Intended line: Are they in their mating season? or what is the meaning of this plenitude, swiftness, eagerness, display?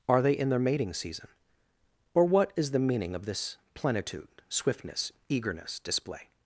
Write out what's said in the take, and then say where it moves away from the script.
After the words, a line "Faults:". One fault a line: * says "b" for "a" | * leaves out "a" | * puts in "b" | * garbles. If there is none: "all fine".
Are they in their mating season? or what is the meaning of this plenitude, swiftness, eagerness, display?
Faults:
all fine